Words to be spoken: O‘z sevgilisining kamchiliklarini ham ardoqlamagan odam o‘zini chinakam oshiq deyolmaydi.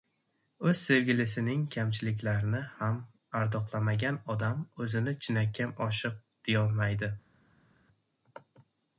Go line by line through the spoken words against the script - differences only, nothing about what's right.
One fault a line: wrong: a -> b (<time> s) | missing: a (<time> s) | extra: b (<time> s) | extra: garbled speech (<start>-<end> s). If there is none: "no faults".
no faults